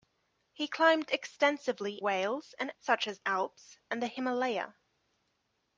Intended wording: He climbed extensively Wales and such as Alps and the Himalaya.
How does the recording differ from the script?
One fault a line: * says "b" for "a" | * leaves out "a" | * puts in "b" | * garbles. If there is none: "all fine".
all fine